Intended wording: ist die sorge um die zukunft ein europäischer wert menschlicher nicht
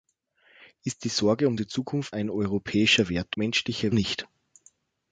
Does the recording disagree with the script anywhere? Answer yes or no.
no